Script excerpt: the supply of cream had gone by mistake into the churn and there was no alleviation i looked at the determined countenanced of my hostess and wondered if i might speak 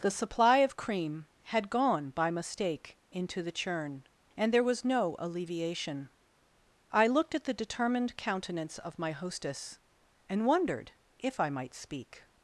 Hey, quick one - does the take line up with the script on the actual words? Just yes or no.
no